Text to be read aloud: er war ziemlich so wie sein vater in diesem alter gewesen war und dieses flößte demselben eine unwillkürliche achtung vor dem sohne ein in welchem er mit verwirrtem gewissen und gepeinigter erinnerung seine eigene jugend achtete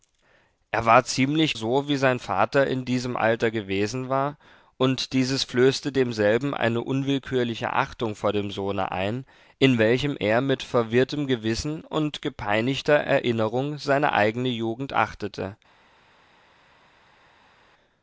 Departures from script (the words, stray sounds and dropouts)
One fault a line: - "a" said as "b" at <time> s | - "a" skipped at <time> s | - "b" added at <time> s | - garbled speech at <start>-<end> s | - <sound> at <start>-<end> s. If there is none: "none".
none